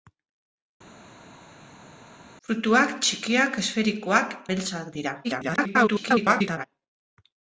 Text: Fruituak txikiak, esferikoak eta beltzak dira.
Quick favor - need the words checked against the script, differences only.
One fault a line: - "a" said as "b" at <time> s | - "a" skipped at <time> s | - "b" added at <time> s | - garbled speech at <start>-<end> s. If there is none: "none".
- "eta" skipped at 4.4 s
- garbled speech at 5.2-6.6 s